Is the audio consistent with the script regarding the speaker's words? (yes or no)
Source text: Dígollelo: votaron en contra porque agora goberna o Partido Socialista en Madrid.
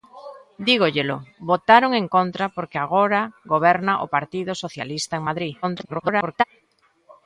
no